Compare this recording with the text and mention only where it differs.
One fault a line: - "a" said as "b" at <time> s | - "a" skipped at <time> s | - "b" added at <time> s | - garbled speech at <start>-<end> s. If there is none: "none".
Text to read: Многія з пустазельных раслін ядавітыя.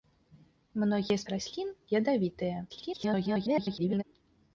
- "пустазельных" skipped at 1.3 s
- garbled speech at 2.7-4.0 s